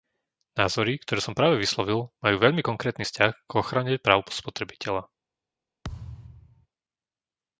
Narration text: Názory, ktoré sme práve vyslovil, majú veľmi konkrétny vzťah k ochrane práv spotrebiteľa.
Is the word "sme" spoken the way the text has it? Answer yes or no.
no